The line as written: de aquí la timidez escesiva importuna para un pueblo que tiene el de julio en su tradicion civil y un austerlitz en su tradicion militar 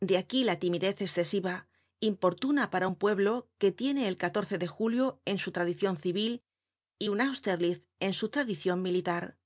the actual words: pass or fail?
pass